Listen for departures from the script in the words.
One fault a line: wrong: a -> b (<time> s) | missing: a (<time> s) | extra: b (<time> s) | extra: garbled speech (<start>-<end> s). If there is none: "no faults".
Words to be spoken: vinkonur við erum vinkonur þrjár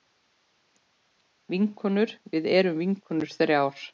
no faults